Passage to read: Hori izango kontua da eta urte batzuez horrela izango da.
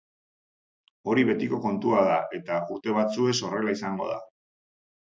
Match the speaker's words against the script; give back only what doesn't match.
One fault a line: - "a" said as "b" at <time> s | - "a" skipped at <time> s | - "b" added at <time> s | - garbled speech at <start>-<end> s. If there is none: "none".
- "izango" said as "betiko" at 1.3 s